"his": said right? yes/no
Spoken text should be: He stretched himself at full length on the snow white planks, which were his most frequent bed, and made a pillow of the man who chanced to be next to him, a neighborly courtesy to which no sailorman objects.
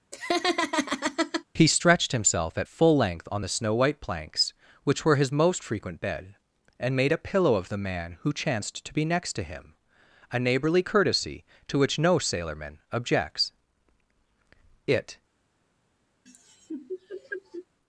yes